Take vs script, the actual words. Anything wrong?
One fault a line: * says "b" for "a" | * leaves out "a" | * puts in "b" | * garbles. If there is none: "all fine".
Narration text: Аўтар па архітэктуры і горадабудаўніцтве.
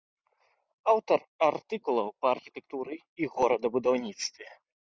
* puts in "артыкулаў"